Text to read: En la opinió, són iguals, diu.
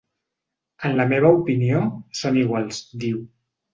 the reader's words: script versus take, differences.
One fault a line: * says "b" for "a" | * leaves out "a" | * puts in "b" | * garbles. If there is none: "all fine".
* puts in "meva"